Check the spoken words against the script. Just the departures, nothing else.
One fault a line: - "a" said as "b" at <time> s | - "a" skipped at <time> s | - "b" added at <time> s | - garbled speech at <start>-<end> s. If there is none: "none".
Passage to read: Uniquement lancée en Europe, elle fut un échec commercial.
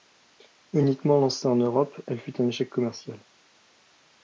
none